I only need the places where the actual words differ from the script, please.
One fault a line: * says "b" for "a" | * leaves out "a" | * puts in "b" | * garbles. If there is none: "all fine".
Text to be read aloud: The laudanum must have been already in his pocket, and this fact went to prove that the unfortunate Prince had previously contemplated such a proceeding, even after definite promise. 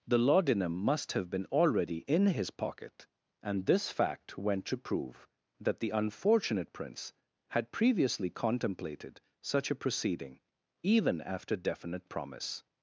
all fine